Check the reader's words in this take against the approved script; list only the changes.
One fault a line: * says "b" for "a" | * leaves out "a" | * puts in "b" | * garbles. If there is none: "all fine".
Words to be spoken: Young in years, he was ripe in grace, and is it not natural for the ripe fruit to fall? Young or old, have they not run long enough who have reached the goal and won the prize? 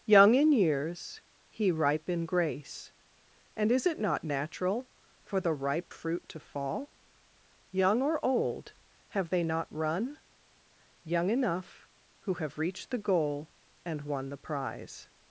* leaves out "was"
* says "young" for "long"